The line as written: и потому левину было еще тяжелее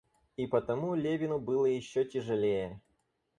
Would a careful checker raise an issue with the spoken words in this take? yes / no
no